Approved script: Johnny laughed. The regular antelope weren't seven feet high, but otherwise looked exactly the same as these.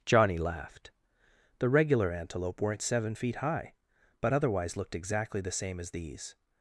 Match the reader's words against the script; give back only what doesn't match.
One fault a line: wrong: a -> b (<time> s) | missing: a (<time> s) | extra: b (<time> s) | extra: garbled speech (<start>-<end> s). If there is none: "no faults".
no faults